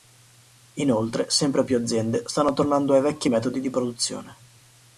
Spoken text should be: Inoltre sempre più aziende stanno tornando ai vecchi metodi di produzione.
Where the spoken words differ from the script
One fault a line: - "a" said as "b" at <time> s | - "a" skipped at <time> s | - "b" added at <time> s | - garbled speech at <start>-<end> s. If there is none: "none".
none